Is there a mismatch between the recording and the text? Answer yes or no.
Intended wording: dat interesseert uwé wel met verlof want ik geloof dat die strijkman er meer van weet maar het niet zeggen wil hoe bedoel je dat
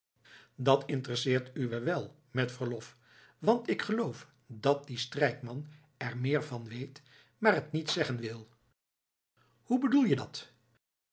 no